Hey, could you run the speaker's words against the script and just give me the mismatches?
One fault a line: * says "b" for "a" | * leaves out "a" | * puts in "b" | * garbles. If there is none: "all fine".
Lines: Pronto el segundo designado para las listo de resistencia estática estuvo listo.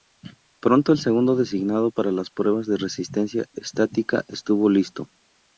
* says "pruebas" for "listo"